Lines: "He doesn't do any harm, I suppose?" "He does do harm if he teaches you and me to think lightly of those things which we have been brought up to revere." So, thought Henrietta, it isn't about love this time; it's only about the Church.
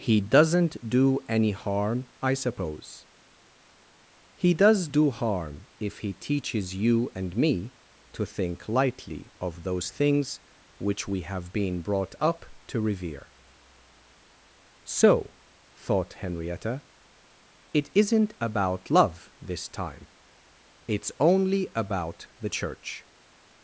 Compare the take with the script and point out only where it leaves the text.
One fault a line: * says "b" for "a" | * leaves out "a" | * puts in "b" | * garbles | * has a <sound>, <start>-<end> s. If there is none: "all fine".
all fine